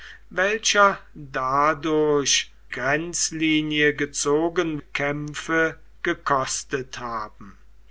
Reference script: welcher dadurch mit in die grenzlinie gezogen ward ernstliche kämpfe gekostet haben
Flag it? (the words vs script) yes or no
yes